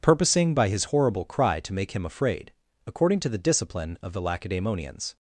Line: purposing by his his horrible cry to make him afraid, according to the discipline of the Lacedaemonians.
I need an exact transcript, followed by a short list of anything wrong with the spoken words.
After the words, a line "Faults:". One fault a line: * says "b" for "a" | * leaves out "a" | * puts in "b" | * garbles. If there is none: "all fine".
purposing by his horrible cry to make him afraid, according to the discipline of the Lacedaemonians.
Faults:
* leaves out "his"